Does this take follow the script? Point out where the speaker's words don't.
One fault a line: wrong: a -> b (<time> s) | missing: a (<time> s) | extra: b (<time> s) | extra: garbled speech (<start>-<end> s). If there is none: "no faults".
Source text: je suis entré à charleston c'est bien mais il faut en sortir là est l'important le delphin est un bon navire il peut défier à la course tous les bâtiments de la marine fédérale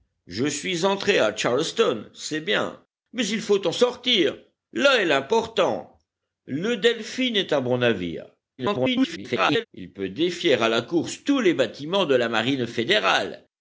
extra: garbled speech (8.6-9.7 s)